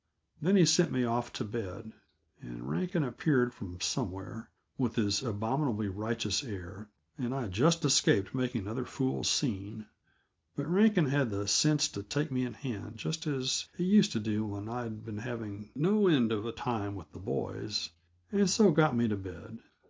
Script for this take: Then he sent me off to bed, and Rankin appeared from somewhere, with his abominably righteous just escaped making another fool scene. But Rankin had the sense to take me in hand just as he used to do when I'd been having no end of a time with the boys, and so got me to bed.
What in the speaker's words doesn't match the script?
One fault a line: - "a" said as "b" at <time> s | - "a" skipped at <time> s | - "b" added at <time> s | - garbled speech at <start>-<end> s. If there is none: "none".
- "air and I" added at 6.4 s